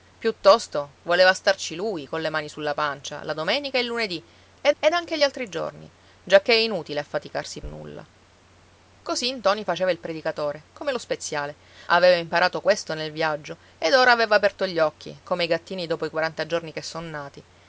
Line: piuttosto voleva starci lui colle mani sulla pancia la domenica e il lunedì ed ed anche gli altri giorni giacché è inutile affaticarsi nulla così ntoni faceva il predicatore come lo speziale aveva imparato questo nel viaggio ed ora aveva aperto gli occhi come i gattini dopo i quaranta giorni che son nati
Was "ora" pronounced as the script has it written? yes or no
yes